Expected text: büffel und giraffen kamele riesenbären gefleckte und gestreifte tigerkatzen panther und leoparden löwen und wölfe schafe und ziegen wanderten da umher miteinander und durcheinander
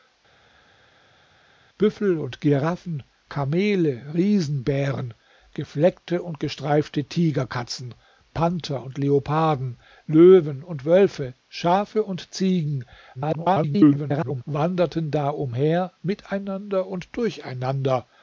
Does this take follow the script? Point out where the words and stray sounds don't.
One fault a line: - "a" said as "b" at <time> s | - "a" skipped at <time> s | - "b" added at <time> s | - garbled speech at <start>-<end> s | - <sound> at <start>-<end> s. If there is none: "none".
- garbled speech at 13.1-14.4 s